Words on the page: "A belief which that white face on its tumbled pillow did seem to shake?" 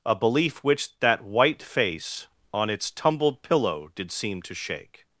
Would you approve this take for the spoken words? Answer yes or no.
yes